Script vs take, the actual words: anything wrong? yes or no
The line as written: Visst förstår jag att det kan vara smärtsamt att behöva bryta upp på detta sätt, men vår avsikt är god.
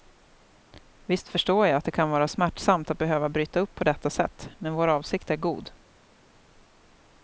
no